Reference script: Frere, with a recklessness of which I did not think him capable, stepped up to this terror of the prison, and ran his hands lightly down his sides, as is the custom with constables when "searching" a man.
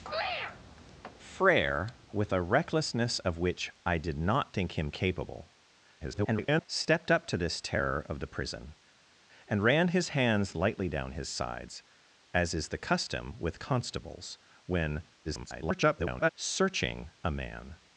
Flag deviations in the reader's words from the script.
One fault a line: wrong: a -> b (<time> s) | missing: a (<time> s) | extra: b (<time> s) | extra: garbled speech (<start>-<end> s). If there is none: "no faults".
extra: garbled speech (6.0-6.7 s)
extra: garbled speech (15.2-16.3 s)